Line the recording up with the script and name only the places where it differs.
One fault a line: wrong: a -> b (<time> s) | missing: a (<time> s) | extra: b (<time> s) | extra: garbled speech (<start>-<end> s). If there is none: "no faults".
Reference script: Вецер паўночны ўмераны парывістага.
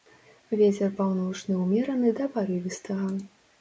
extra: да (2.2 s)